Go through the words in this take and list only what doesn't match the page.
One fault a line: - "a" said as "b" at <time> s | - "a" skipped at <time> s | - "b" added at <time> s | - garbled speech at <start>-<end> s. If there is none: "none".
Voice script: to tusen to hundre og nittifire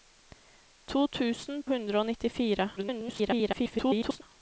- "to" skipped at 1.6 s
- garbled speech at 2.8-4.2 s